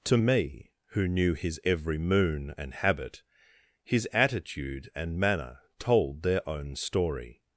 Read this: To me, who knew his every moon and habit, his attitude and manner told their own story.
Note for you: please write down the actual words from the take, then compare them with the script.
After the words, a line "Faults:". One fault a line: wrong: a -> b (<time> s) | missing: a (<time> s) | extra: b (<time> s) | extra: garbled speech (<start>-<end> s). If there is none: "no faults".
To me, who knew his every moon and habit, his attitude and manner told their own story.
Faults:
no faults